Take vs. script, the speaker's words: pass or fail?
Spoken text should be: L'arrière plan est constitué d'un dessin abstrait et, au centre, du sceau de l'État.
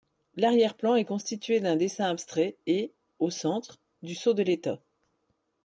pass